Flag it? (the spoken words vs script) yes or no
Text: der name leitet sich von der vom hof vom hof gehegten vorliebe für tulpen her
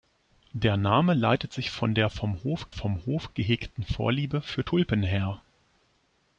no